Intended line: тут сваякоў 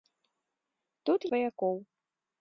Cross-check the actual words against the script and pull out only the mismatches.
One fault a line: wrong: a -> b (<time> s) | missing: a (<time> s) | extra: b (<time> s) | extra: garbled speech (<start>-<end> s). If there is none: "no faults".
no faults